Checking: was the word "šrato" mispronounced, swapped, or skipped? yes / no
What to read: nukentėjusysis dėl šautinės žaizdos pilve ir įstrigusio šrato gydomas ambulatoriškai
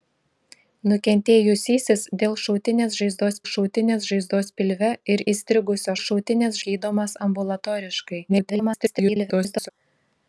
yes